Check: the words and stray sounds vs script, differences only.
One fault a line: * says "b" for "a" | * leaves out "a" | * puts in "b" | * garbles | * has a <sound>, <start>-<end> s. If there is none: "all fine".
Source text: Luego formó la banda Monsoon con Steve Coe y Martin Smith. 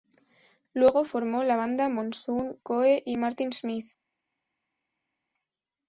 * leaves out "con Steve"